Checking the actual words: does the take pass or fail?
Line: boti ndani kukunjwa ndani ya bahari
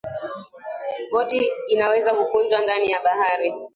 fail